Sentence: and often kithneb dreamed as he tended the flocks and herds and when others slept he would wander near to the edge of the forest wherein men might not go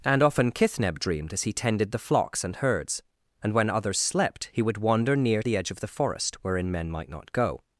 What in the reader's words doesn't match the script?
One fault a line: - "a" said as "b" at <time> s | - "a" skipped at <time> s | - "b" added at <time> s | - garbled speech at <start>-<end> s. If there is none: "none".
- "to" skipped at 5.4 s